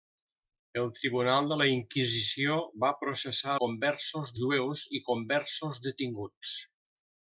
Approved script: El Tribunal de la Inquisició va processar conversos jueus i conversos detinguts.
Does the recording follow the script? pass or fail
pass